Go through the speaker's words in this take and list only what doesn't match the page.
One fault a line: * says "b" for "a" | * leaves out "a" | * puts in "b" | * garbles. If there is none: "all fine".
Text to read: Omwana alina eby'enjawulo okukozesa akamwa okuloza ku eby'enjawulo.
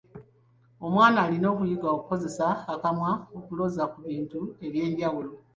* says "okuyiga" for "eby'enjawulo"
* puts in "bintu"